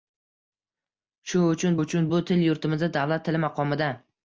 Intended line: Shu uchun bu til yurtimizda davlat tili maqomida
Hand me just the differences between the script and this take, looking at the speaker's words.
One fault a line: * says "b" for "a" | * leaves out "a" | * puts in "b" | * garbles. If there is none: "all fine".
* puts in "uchun"